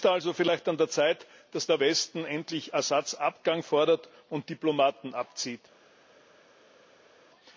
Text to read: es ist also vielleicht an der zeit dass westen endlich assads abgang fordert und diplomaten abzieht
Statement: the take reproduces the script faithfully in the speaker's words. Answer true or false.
false